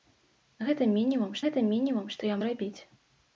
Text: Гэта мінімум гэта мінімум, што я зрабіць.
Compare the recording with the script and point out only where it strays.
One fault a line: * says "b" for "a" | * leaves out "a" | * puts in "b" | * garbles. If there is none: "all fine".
all fine